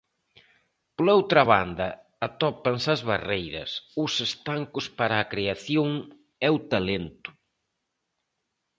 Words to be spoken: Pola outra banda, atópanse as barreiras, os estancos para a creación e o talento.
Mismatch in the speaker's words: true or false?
false